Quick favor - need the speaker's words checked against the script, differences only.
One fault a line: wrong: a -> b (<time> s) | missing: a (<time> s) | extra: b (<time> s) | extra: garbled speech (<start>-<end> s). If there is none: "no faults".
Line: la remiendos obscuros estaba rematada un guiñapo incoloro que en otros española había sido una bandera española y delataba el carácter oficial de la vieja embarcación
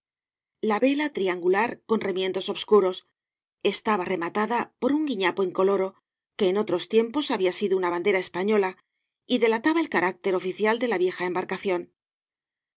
extra: vela triangular con (0.8 s)
extra: por (4.8 s)
wrong: española -> tiempos (6.9 s)